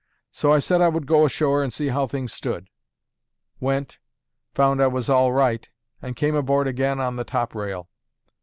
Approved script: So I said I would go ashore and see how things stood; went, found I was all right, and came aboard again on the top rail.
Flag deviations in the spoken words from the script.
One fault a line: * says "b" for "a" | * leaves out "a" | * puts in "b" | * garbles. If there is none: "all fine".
all fine